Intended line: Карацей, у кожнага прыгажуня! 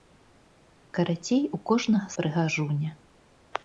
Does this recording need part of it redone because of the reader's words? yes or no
no